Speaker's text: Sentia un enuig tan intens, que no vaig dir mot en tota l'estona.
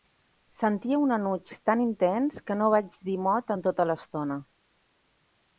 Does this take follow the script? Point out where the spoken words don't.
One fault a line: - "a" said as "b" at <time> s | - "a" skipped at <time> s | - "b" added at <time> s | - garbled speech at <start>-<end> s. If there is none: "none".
none